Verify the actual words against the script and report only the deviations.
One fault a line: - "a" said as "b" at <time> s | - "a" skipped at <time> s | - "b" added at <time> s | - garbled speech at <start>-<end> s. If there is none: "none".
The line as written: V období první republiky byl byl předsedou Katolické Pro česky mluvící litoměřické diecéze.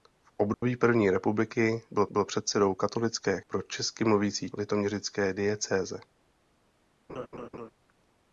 none